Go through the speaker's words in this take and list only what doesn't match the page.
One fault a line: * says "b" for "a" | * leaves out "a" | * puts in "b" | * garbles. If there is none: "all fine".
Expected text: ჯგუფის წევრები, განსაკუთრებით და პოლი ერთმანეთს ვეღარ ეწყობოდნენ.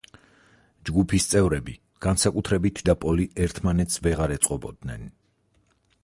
all fine